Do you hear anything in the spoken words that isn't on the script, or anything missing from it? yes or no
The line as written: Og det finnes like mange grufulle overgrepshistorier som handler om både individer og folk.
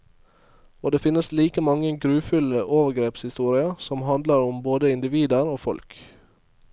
no